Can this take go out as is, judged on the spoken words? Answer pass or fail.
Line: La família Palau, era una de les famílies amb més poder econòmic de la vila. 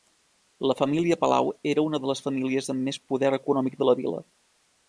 pass